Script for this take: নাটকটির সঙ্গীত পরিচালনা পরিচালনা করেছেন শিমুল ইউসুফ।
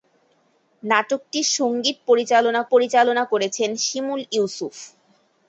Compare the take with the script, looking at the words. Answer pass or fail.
pass